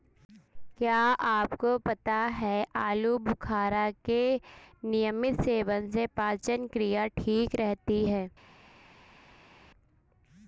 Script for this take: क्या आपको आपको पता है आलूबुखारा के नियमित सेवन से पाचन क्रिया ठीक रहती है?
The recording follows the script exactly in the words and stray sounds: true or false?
false